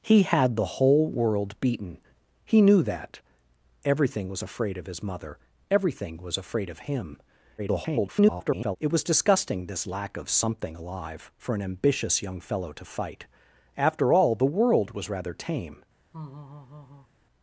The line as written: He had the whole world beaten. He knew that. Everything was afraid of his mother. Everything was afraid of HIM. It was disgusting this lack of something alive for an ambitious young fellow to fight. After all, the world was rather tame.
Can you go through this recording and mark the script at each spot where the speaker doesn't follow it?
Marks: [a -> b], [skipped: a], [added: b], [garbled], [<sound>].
He had the whole world beaten. He knew that. Everything was afraid of his mother. Everything was afraid of HIM. [garbled] It was disgusting this lack of something alive for an ambitious young fellow to fight. After all, the world was rather tame. [laugh]